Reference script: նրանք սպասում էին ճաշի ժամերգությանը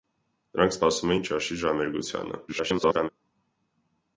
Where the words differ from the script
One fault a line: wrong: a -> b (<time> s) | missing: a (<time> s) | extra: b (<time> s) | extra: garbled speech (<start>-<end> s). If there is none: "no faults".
extra: garbled speech (2.5-3.1 s)